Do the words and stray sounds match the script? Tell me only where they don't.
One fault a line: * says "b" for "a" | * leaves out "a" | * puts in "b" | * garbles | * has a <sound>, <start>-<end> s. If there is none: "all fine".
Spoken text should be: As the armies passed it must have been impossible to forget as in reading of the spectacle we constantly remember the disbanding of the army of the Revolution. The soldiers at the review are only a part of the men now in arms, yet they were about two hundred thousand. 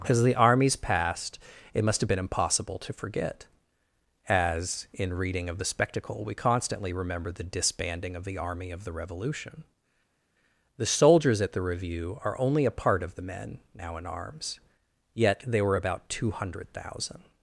all fine